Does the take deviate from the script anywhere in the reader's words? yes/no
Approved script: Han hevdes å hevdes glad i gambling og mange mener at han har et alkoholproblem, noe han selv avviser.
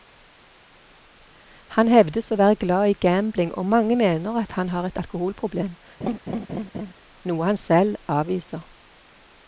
yes